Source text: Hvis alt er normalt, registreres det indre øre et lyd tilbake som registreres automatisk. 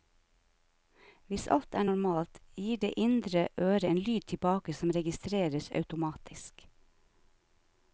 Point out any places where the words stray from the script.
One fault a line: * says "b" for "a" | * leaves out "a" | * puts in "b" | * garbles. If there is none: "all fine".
* says "gir" for "registreres"
* says "en" for "et"